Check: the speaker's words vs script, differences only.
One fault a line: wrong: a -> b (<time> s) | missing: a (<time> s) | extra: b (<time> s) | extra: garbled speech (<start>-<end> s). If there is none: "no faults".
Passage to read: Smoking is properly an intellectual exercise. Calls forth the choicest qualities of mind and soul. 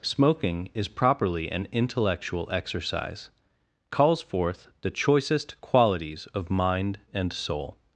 no faults